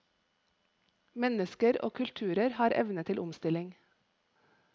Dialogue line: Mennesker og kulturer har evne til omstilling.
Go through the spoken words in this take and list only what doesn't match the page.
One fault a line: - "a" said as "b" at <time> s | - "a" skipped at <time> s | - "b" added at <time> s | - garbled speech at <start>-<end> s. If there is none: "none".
none